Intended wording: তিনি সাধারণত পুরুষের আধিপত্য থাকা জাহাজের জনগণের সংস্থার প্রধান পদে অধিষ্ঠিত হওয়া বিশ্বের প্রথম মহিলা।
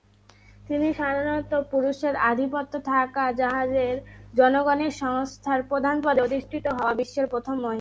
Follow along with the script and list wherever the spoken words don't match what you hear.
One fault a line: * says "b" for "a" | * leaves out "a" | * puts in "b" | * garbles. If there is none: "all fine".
all fine